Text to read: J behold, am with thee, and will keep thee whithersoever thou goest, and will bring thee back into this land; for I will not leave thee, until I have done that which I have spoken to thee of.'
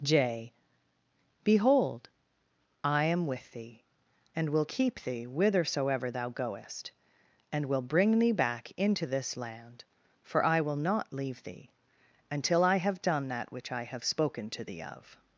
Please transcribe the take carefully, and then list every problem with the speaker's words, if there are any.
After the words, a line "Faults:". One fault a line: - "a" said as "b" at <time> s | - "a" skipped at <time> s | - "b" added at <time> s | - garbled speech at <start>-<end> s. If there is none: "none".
J behold, I am with thee, and will keep thee whithersoever thou goest, and will bring thee back into this land; for I will not leave thee, until I have done that which I have spoken to thee of.'
Faults:
- "I" added at 2.8 s